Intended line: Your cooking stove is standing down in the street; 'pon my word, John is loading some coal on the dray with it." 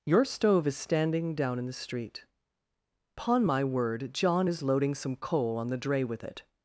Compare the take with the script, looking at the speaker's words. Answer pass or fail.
fail